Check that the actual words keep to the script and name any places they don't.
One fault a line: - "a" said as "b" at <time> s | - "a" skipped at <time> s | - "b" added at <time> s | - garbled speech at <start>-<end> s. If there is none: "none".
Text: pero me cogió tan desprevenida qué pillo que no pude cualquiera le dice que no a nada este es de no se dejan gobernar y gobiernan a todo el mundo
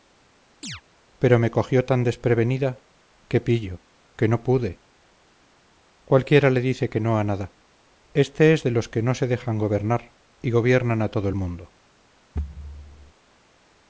- "los que" added at 8.7 s